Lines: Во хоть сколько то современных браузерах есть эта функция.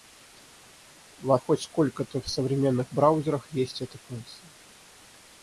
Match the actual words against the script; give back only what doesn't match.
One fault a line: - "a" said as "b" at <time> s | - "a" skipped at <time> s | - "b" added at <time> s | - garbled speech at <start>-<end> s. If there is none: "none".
none